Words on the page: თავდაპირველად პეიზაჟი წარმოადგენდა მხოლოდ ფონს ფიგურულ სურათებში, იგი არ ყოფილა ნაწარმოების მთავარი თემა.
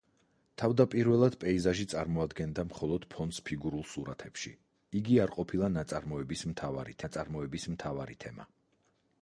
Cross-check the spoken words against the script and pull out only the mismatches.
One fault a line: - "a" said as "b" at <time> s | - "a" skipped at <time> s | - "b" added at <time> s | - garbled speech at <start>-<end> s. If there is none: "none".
- "ნაწარმოების მთავარი" added at 7.0 s